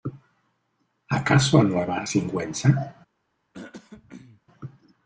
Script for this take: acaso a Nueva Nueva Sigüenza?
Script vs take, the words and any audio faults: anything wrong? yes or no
yes